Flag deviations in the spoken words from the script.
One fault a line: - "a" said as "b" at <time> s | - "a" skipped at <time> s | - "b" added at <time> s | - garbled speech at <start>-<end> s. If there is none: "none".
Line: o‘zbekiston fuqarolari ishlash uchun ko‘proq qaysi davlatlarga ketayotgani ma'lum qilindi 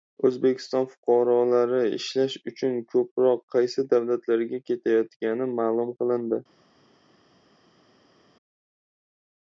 none